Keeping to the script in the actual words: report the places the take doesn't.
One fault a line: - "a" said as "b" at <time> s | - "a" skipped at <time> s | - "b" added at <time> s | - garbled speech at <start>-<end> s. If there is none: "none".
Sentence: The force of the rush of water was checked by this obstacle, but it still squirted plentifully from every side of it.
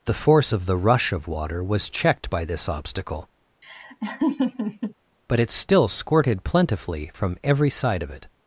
none